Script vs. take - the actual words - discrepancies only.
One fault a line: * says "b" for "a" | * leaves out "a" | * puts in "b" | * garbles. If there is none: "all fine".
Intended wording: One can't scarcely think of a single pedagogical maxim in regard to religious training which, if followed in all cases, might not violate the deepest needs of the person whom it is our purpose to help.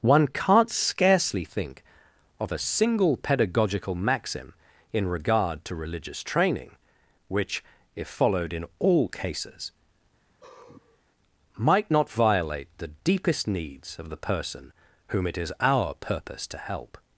all fine